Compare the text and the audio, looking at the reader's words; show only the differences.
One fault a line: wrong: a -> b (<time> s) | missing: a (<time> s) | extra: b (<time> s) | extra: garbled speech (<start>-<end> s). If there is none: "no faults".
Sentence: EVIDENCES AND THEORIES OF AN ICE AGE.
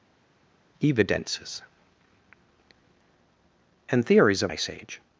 missing: AN (4.5 s)